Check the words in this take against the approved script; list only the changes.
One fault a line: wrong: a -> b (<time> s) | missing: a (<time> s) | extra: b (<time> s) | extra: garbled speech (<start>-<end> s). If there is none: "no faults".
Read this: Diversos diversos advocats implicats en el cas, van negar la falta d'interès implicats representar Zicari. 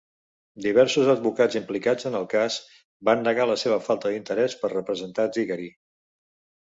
missing: diversos (1.1 s)
extra: seva (3.6 s)
wrong: implicats -> per (4.6 s)